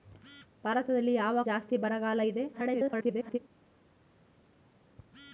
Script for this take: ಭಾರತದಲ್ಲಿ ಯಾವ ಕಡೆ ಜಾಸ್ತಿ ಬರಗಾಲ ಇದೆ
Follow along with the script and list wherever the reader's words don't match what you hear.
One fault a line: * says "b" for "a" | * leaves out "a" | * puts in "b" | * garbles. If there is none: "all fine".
* leaves out "ಕಡೆ"
* garbles